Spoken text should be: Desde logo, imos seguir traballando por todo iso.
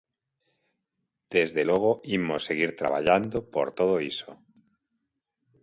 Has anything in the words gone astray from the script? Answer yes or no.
no